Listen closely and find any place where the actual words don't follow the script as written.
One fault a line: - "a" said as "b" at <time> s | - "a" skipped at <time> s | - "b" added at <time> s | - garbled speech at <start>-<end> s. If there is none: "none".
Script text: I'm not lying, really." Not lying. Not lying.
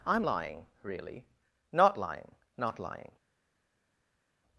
- "not" skipped at 0.2 s